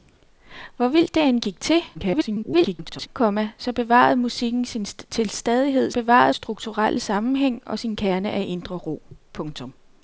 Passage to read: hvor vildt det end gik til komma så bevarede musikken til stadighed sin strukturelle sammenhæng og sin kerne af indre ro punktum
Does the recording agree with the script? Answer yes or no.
no